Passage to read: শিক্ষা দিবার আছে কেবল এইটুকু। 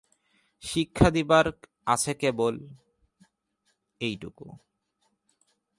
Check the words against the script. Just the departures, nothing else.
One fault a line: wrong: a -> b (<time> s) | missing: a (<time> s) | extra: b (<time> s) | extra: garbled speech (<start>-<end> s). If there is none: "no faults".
no faults